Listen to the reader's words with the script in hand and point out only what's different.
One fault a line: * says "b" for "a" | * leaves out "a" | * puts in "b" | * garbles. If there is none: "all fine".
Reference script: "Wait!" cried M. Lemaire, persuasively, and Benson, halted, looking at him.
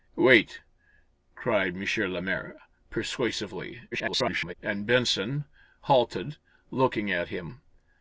* garbles